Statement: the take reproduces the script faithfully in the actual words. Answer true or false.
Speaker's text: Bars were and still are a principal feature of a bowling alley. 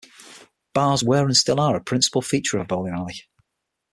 true